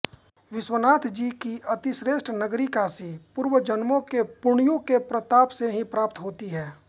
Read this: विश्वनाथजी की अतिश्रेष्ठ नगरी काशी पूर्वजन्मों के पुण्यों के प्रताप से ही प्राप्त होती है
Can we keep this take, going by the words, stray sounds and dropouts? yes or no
yes